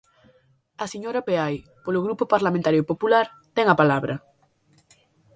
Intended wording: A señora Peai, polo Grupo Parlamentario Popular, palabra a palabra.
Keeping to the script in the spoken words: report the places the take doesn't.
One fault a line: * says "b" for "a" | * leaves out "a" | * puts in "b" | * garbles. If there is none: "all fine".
* says "ten" for "palabra"